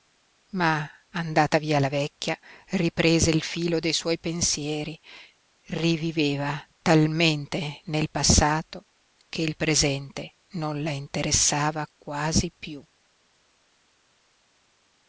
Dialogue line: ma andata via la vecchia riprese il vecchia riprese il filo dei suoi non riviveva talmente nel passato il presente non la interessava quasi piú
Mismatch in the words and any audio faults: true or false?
true